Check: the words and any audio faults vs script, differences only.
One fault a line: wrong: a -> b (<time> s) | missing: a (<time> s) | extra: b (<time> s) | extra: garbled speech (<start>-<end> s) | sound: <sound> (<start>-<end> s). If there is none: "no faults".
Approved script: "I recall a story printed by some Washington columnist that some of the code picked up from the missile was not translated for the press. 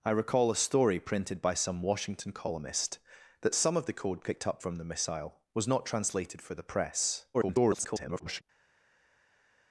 extra: garbled speech (7.3-8.4 s)